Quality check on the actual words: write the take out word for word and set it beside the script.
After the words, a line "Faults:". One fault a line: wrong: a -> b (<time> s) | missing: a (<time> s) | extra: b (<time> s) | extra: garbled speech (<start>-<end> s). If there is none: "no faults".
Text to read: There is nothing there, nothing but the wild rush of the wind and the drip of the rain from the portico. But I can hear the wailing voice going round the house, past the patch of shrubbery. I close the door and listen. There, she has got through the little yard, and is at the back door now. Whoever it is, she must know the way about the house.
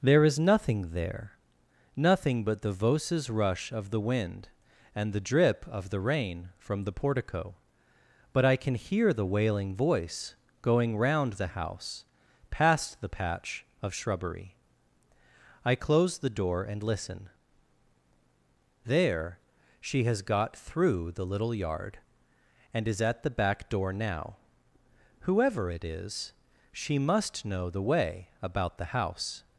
There is nothing there, nothing but the voces rush of the wind and the drip of the rain from the portico. But I can hear the wailing voice going round the house, past the patch of shrubbery. I close the door and listen. There, she has got through the little yard, and is at the back door now. Whoever it is, she must know the way about the house.
Faults:
wrong: wild -> voces (2.7 s)